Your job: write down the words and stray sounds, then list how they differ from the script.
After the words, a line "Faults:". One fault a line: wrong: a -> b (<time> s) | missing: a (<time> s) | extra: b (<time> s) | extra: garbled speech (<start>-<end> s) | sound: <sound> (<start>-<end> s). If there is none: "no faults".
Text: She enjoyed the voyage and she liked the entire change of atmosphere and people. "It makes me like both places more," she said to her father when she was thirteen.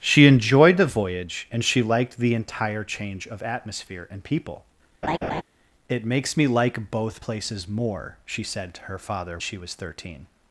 She enjoyed the voyage and she liked the entire change of atmosphere and people. "It makes me like both places more," she said to her father she was thirteen.
Faults:
sound: laugh (5.0-5.4 s)
missing: when (9.4 s)